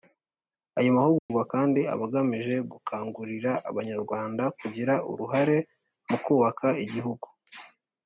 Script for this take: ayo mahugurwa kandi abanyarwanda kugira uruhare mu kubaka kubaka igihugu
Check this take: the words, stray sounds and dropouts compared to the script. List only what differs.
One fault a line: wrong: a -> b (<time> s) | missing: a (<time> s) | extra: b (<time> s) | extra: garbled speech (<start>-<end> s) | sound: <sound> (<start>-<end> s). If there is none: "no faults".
sound: dropout (1.2-1.3 s)
extra: aba agamije gukangurira (1.9 s)
missing: kubaka (6.7 s)